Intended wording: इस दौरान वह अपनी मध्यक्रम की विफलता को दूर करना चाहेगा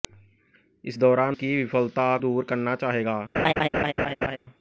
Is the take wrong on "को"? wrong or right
wrong